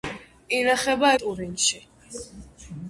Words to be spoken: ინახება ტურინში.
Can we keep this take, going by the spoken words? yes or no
yes